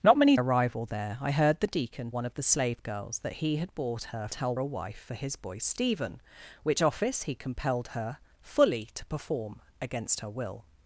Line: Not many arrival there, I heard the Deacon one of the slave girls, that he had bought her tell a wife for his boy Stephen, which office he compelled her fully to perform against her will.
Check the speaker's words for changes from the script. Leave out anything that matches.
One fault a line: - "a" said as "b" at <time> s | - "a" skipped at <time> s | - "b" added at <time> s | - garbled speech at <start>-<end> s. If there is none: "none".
none